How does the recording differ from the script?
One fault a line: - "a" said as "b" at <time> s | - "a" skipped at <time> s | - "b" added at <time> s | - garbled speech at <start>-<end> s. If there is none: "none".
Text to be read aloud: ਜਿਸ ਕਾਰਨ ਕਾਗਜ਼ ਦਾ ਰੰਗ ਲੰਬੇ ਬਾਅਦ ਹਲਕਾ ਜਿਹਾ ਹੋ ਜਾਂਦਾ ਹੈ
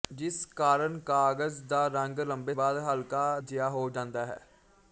none